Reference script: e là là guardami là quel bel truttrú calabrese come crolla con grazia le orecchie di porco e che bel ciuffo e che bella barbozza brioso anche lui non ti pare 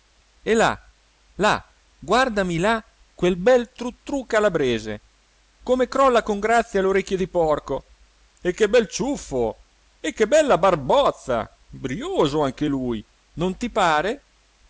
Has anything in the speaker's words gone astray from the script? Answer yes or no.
no